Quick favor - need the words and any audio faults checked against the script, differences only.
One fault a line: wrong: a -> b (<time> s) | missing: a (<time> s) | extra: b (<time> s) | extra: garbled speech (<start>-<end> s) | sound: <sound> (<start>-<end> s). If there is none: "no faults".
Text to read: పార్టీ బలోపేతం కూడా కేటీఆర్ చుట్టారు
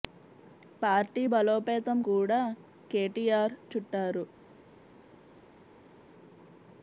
no faults